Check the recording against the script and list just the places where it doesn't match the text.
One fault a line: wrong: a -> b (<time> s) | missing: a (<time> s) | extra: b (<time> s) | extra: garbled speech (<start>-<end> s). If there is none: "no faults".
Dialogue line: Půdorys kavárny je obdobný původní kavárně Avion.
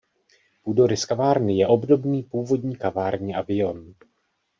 no faults